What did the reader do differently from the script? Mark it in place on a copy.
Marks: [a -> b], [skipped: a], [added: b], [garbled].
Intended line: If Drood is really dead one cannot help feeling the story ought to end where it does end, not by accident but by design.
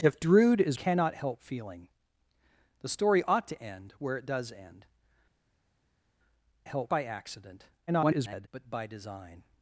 If Drood is [skipped: really dead one] cannot help feeling the story ought to end where it does end, [not -> help] by accident [garbled] but by design.